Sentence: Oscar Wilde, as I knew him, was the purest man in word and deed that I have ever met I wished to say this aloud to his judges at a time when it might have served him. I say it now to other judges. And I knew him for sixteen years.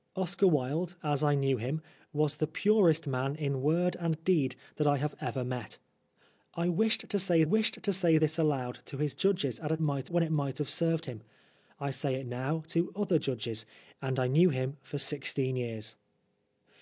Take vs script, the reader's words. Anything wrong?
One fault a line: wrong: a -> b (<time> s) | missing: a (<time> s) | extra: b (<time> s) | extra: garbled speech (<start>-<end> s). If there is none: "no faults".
extra: wished to say (7.4 s)
wrong: time -> might (9.8 s)